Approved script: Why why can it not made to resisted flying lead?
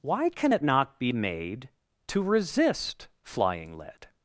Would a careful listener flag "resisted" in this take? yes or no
yes